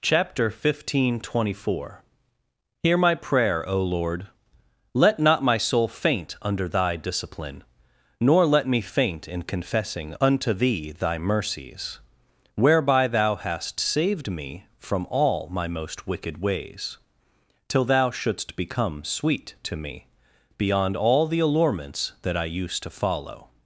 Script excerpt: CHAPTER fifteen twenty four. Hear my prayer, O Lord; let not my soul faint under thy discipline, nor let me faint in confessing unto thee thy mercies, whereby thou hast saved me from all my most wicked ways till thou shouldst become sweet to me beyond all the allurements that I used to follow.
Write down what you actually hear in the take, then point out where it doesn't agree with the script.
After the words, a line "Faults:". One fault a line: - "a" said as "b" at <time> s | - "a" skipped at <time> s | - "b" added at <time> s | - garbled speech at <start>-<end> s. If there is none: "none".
CHAPTER fifteen twenty four. Hear my prayer, O Lord; let not my soul faint under thy discipline, nor let me faint in confessing unto thee thy mercies, whereby thou hast saved me from all my most wicked ways till thou shouldst become sweet to me beyond all the allurements that I used to follow.
Faults:
none